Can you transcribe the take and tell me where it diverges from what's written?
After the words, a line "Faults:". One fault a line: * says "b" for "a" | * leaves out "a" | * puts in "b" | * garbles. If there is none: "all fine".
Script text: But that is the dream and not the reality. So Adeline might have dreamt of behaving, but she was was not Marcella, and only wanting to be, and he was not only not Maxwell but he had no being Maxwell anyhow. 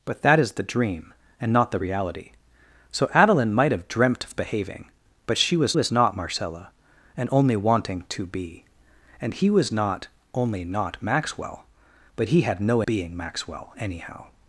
But that is the dream and not the reality. So Adeline might have dreamt of behaving, but she was was not Marcella, and only wanting to be, and he was not only not Maxwell but he had no being Maxwell anyhow.
Faults:
all fine